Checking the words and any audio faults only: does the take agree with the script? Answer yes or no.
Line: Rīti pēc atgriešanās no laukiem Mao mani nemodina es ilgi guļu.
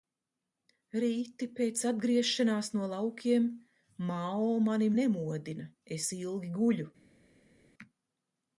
yes